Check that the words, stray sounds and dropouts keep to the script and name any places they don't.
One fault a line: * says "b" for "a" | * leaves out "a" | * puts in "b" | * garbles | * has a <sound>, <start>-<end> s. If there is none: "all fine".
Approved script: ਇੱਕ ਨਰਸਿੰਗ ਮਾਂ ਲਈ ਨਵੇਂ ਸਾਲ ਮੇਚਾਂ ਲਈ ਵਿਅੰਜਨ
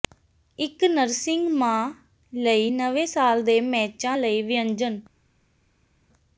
* puts in "ਦੇ"